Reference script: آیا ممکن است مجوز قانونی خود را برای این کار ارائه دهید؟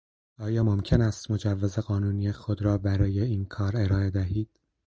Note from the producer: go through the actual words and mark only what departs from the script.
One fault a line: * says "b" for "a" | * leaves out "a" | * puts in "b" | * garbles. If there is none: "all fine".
all fine